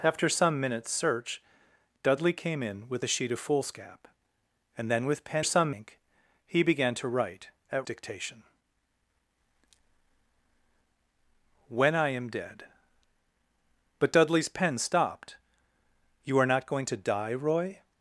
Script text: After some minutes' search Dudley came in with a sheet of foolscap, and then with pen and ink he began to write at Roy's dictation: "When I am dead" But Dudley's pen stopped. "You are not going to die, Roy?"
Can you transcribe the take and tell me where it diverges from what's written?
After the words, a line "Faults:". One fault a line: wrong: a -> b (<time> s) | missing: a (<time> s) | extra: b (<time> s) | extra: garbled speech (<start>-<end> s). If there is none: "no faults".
After some minutes' search Dudley came in with a sheet of foolscap, and then with pen some ink he began to write at Dictation: "When I am dead" But Dudley's pen stopped. "You are not going to die, Roy?"
Faults:
wrong: and -> some (5.4 s)
missing: Roy's (7.9 s)